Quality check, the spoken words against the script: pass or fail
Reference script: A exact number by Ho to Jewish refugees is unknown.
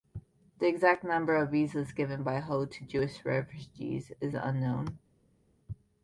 fail